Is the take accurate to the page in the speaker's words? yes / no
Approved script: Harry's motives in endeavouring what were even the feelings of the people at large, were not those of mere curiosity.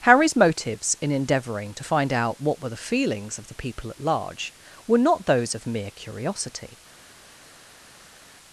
no